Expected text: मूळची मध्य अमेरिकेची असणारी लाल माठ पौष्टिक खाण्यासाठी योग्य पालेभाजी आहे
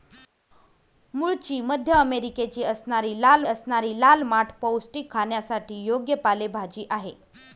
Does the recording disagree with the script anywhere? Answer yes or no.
yes